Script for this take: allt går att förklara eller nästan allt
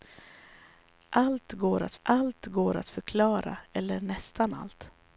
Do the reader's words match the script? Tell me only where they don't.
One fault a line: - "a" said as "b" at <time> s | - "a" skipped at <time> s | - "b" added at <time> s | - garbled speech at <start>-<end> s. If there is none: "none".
- "allt går att" added at 2.0 s